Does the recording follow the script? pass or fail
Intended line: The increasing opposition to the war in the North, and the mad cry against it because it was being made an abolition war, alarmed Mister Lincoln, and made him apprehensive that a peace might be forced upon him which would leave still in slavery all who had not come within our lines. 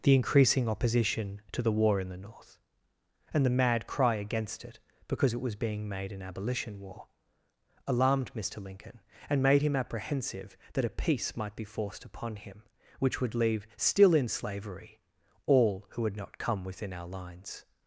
pass